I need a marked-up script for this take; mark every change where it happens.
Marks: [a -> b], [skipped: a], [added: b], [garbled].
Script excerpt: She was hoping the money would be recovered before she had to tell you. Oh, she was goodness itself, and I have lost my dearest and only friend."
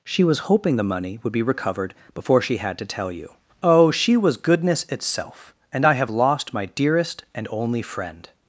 She was hoping the money would be recovered before she had to tell you. Oh, she was goodness itself, and I have lost my dearest and only friend."